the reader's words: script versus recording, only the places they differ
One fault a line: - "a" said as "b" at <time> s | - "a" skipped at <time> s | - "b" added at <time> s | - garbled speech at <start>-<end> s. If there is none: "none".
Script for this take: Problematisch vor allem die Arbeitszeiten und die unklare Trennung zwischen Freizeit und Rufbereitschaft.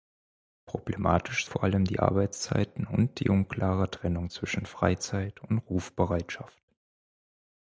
none